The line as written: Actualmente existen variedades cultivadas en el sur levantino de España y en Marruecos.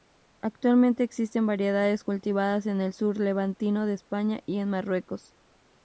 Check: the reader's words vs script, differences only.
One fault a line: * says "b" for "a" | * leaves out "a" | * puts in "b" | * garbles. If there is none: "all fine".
all fine